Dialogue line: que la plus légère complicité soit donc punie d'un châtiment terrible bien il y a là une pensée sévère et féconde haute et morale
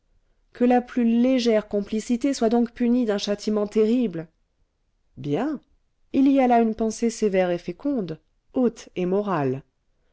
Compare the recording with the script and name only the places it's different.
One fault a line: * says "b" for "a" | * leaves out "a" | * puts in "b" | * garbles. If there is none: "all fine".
all fine